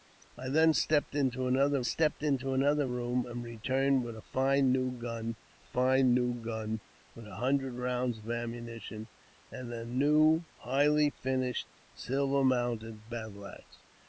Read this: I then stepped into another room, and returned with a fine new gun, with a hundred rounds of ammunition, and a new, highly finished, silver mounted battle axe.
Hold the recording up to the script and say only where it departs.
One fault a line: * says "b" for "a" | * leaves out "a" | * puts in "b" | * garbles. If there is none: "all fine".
* puts in "stepped into another"
* puts in "fine new gun"